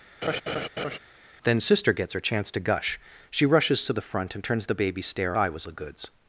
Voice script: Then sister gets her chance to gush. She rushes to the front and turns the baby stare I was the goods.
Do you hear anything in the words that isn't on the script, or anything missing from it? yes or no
no